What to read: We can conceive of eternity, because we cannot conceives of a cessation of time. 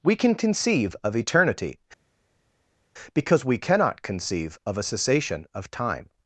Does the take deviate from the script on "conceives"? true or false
true